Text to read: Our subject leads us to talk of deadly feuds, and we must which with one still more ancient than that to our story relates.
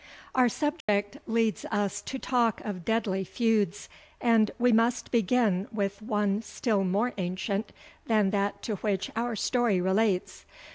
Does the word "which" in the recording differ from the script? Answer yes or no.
yes